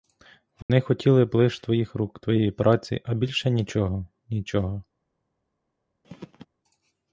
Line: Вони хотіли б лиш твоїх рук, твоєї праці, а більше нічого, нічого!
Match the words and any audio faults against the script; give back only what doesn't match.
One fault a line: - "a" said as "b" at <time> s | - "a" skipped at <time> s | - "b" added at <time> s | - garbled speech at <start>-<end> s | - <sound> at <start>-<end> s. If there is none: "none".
- dropout at 0.6-0.7 s
- throat clearing at 6.0-6.5 s